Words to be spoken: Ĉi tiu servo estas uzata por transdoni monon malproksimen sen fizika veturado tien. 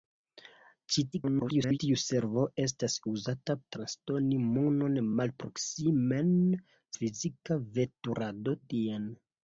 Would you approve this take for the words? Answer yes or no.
no